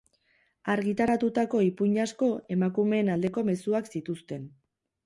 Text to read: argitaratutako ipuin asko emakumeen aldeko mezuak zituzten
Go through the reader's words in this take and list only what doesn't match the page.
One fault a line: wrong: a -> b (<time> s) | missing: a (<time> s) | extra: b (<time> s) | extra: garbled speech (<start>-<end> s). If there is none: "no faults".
no faults